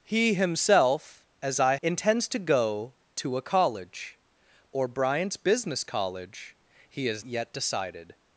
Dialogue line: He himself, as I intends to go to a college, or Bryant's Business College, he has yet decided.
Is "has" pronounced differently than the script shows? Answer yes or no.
no